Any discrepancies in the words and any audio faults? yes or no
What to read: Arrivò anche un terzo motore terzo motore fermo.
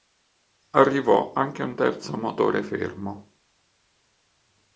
yes